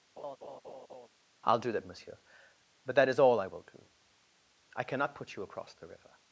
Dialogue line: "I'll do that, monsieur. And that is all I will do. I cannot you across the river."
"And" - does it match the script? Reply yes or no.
no